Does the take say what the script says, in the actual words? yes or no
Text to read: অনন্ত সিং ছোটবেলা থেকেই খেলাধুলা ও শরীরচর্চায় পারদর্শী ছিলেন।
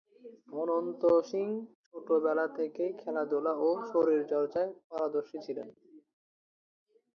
yes